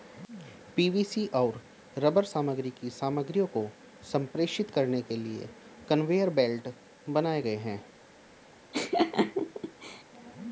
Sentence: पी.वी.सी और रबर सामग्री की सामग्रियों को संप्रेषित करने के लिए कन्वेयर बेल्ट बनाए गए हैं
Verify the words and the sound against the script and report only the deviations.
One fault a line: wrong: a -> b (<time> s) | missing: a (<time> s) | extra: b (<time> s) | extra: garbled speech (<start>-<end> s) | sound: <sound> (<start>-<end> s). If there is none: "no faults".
sound: laugh (8.7-10.0 s)